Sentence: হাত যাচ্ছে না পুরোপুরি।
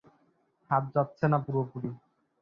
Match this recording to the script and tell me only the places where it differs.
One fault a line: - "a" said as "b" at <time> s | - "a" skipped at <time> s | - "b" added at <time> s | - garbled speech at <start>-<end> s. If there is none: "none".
none